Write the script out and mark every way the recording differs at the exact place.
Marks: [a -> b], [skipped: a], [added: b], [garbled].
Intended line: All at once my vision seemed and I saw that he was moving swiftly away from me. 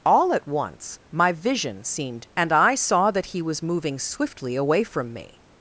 All at once my vision seemed and I saw that he was moving swiftly away from me.